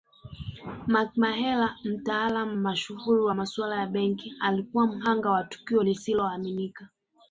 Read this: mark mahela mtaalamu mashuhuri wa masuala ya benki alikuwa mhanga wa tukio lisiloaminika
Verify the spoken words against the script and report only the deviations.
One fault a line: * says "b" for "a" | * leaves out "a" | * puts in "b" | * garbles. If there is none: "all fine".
all fine